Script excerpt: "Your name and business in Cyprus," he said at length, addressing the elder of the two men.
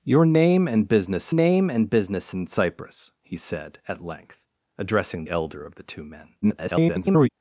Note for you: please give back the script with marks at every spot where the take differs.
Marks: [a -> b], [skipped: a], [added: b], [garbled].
"Your name and business [added: name and business] in Cyprus," he said at length, addressing [skipped: the] elder of the two men. [garbled]